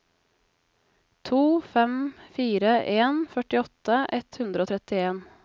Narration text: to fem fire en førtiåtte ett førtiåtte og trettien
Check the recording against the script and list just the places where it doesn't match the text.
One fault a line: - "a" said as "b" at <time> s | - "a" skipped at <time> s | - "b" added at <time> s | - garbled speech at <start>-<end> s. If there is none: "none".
- "førtiåtte" said as "hundre" at 4.4 s